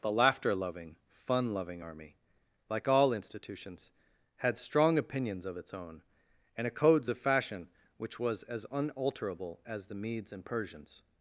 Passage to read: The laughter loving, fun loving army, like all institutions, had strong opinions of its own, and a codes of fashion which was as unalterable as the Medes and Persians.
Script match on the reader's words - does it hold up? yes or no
yes